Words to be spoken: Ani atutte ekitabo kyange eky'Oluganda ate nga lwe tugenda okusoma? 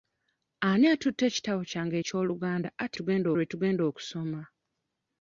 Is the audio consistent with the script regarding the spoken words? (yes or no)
no